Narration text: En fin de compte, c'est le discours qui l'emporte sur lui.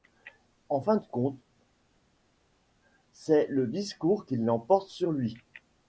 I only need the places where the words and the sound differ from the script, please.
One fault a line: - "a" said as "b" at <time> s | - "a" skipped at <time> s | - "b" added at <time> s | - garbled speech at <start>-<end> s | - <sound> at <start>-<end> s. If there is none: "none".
none